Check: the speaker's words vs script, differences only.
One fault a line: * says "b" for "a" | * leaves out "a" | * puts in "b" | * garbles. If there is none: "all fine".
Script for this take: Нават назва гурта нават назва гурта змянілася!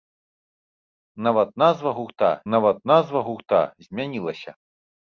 all fine